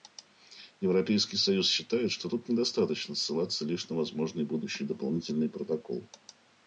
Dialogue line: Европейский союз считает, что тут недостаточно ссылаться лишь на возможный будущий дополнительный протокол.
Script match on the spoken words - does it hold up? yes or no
yes